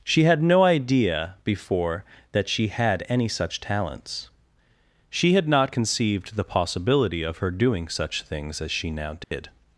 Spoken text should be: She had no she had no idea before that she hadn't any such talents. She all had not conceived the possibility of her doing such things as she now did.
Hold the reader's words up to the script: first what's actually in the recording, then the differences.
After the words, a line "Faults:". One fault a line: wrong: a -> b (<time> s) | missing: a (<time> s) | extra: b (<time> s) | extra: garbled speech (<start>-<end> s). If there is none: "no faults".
She had no idea before that she had any such talents. She had not conceived the possibility of her doing such things as she now did.
Faults:
missing: she had no (0.6 s)
wrong: hadn't -> had (2.7 s)
missing: all (5.3 s)